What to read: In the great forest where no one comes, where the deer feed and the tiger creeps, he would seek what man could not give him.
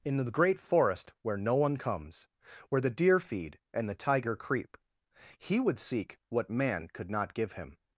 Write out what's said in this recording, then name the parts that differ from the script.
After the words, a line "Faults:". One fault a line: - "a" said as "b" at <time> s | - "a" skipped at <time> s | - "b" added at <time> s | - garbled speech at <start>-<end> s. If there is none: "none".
In the great forest where no one comes, where the deer feed and the tiger creep, he would seek what man could not give him.
Faults:
- "creeps" said as "creep" at 4.4 s